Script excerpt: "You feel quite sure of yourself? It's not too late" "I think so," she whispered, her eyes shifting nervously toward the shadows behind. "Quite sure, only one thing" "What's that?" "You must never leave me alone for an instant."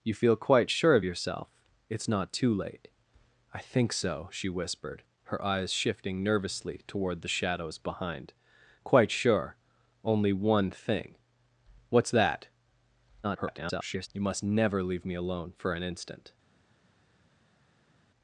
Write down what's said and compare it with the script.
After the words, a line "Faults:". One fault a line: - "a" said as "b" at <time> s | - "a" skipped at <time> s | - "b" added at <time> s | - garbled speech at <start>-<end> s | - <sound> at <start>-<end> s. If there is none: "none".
"You feel quite sure of yourself? It's not too late" "I think so," she whispered, her eyes shifting nervously toward the shadows behind. "Quite sure, only one thing" "What's that?" [garbled] "You must never leave me alone for an instant."
Faults:
- garbled speech at 13.2-14.1 s